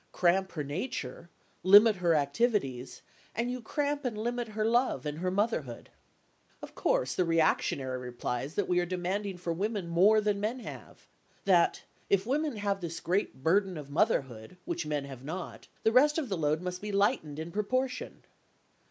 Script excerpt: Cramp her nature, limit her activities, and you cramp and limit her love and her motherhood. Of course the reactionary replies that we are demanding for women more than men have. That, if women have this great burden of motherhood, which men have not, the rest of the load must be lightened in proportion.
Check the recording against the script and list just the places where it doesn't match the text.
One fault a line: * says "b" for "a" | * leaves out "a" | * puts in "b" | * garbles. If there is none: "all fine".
all fine